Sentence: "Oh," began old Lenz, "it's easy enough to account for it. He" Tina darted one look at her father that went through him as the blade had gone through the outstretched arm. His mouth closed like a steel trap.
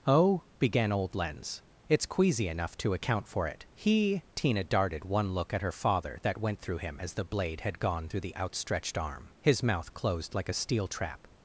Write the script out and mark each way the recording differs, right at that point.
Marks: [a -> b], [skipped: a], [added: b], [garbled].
"Oh," began old Lenz, "it's [easy -> queasy] enough to account for it. He" Tina darted one look at her father that went through him as the blade had gone through the outstretched arm. His mouth closed like a steel trap.